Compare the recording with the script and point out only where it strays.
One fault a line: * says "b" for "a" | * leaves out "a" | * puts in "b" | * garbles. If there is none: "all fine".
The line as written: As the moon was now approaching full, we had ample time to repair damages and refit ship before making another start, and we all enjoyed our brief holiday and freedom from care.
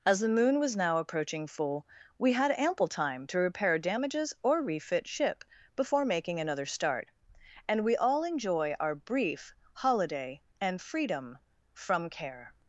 * says "or" for "and"
* says "enjoy" for "enjoyed"